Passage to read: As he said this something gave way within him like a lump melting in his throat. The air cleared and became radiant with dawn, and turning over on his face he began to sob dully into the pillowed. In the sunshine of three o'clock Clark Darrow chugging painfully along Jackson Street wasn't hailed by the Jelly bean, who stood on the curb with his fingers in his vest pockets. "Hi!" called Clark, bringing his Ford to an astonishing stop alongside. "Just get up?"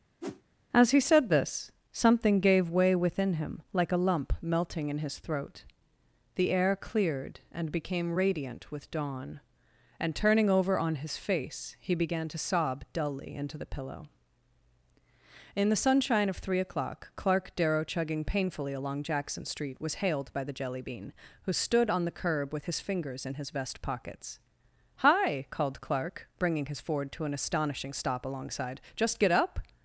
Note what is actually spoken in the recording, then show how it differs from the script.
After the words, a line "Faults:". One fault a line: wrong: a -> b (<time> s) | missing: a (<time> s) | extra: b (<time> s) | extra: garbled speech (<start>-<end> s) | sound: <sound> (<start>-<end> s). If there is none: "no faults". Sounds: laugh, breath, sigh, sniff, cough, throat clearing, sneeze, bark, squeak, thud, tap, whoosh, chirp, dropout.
As he said this something gave way within him like a lump melting in his throat. The air cleared and became radiant with dawn, and turning over on his face he began to sob dully into the pillow. In the sunshine of three o'clock Clark Darrow chugging painfully along Jackson Street was hailed by the Jelly bean, who stood on the curb with his fingers in his vest pockets. "Hi!" called Clark, bringing his Ford to an astonishing stop alongside. "Just get up?"
Faults:
sound: whoosh (0.2-0.4 s)
wrong: pillowed -> pillow (13.7 s)
wrong: wasn't -> was (19.8 s)